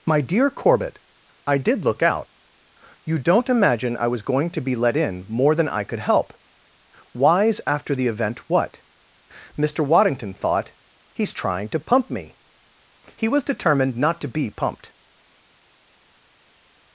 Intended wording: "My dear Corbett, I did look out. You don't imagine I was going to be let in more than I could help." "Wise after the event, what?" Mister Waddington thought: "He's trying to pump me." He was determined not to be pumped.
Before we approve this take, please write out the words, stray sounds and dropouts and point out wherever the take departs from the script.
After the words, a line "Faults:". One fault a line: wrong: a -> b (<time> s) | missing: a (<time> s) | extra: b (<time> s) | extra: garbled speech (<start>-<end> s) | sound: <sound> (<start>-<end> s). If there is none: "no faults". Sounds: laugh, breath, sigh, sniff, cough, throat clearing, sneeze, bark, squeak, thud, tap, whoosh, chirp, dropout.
"My dear Corbett, I did look out. You don't imagine I was going to be let in more than I could help." "Wise after the event, what?" Mister Waddington thought: "He's trying to pump me." He was determined not to be pumped.
Faults:
no faults